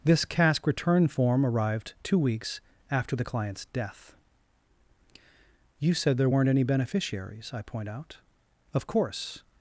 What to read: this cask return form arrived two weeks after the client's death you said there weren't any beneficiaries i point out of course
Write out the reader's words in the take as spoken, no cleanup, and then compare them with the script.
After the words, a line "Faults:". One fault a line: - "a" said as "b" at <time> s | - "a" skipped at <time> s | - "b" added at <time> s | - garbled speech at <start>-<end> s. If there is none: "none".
this cask return form arrived two weeks after the client's death you said there weren't any beneficiaries i point out of course
Faults:
none